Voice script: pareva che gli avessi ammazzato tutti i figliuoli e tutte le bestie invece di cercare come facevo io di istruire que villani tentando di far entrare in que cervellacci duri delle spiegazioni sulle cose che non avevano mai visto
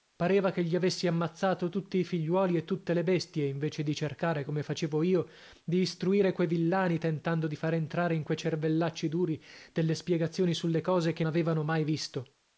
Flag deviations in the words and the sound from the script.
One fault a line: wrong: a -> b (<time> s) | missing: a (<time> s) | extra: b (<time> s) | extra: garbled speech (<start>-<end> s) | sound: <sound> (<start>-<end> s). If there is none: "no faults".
missing: non (11.2 s)